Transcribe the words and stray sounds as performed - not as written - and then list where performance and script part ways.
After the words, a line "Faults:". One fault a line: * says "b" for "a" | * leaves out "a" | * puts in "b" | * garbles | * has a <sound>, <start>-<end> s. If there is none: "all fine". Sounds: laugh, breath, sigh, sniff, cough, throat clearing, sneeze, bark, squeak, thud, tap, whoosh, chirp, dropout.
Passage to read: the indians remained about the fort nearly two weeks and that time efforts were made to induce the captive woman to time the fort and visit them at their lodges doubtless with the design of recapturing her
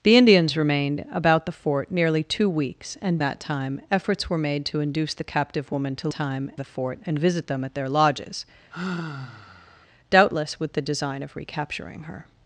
the indians remained about the fort nearly two weeks and that time efforts were made to induce the captive woman to time the fort and visit them at their lodges doubtless with the design of recapturing her
Faults:
* has a sigh, 8.7-9.9 s